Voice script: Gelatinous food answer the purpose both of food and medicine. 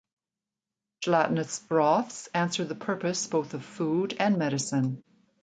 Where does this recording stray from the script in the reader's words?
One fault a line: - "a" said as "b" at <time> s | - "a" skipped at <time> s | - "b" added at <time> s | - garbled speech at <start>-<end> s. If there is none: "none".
- "food" said as "broths" at 1.6 s